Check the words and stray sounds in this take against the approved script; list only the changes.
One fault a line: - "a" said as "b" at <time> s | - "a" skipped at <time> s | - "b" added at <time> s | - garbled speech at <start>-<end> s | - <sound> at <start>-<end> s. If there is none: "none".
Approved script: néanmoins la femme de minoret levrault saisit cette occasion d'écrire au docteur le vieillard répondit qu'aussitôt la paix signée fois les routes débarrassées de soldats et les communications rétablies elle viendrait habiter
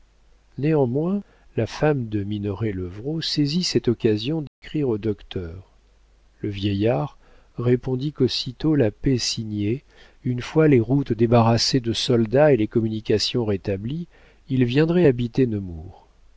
- dropout at 4.5-4.6 s
- "une" added at 10.2 s
- "elle" said as "il" at 14.5 s